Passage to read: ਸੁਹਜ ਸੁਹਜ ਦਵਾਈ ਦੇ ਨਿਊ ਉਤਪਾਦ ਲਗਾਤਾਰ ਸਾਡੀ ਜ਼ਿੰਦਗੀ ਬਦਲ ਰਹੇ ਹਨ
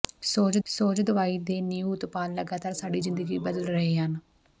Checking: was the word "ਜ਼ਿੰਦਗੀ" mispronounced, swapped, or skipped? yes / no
no